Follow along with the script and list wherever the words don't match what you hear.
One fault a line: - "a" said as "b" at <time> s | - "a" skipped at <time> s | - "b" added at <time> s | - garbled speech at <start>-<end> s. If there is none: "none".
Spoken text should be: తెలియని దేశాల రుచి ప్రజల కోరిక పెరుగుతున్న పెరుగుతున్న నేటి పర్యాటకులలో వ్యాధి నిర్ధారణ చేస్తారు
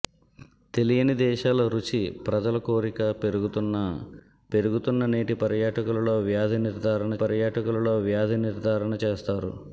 - "పర్యాటకులలో వ్యాధి నిర్ధారణ" added at 7.2 s